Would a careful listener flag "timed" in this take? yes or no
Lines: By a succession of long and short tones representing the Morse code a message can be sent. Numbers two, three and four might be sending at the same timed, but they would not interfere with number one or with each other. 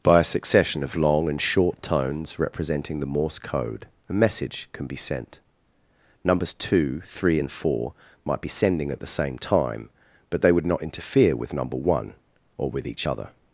yes